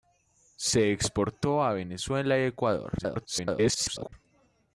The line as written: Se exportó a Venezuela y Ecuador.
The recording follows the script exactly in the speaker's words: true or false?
false